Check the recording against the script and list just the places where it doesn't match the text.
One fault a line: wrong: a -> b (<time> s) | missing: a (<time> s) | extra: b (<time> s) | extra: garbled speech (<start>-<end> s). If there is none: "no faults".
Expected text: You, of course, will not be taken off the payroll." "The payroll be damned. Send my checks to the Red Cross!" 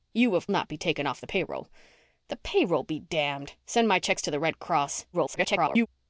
missing: course will (0.5 s)
extra: garbled speech (5.1-5.9 s)